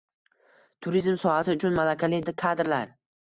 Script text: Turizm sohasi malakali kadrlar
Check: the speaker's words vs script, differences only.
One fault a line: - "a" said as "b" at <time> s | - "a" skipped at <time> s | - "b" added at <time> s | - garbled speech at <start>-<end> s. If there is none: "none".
- "uchun" added at 1.6 s